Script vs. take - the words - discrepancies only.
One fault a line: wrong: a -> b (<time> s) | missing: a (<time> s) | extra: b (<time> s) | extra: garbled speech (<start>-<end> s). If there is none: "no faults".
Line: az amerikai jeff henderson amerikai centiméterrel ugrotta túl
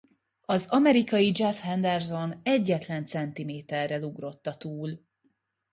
wrong: amerikai -> egyetlen (2.4 s)